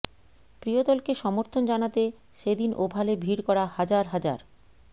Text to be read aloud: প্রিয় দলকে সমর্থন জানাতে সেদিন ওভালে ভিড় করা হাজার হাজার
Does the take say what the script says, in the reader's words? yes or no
yes